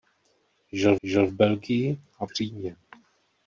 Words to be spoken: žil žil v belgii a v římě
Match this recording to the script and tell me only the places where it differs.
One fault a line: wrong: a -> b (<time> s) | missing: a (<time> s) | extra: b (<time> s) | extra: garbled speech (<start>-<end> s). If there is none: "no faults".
no faults